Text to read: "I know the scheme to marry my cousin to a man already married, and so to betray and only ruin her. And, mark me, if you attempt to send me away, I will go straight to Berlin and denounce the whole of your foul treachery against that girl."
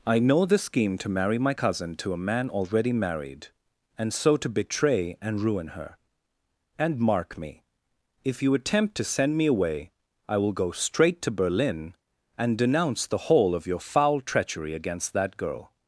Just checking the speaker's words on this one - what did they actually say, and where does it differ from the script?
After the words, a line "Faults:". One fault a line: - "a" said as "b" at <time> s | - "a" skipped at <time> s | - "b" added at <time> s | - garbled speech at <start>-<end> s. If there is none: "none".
"I know the scheme to marry my cousin to a man already married, and so to betray and ruin her. And, mark me, if you attempt to send me away, I will go straight to Berlin and denounce the whole of your foul treachery against that girl."
Faults:
- "only" skipped at 5.4 s